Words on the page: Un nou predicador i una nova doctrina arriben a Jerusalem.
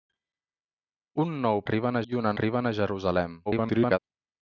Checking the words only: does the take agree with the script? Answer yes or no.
no